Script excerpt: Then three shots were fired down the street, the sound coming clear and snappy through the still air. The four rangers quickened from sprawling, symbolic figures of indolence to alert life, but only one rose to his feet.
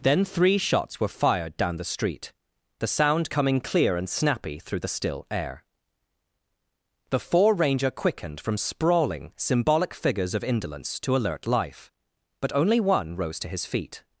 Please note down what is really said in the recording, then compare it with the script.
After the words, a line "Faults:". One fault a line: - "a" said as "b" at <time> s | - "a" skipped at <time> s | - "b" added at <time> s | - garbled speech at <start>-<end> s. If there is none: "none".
Then three shots were fired down the street, the sound coming clear and snappy through the still air. The four ranger quickened from sprawling, symbolic figures of indolence to alert life, but only one rose to his feet.
Faults:
- "rangers" said as "ranger" at 7.5 s